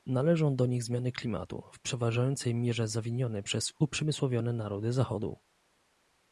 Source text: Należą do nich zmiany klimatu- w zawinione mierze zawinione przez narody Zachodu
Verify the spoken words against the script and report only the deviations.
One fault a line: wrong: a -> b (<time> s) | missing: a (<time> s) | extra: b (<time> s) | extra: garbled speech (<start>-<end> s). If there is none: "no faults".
wrong: zawinione -> przeważającej (1.8 s)
extra: uprzemysłowione (3.8 s)